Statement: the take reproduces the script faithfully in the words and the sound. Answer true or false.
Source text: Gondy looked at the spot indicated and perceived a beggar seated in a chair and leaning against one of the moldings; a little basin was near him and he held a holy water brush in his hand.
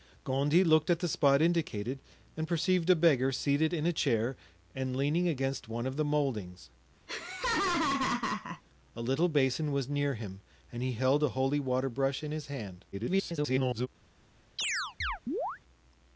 false